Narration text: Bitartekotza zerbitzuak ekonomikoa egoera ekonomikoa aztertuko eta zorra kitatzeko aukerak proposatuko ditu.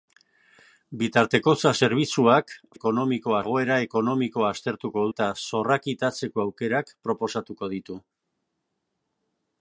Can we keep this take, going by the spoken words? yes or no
yes